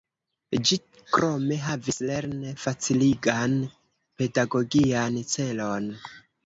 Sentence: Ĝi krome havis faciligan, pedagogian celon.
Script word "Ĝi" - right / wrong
right